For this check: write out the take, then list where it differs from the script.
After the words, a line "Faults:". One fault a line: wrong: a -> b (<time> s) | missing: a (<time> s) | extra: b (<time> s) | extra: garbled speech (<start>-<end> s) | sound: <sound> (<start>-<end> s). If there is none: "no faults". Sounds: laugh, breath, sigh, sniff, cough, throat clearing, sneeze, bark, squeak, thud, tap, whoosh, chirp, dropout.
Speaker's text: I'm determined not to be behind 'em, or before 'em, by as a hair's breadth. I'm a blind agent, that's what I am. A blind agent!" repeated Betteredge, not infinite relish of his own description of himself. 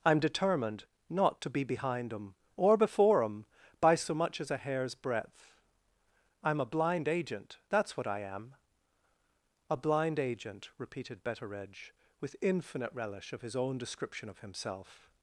I'm determined not to be behind 'em, or before 'em, by so much as a hair's breadth. I'm a blind agent, that's what I am. A blind agent!" repeated Betteredge, with infinite relish of his own description of himself.
Faults:
extra: so much (3.9 s)
wrong: not -> with (12.2 s)